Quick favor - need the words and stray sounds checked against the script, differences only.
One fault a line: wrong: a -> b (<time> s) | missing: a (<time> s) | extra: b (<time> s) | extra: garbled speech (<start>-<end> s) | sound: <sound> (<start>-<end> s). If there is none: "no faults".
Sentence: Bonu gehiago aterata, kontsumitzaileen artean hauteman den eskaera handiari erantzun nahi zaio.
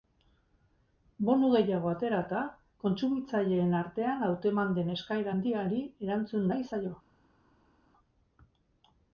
no faults